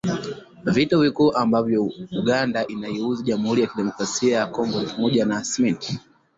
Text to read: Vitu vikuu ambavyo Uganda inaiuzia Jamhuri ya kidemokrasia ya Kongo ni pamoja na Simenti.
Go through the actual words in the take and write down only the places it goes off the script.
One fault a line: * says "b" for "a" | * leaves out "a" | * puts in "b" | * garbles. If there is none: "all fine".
all fine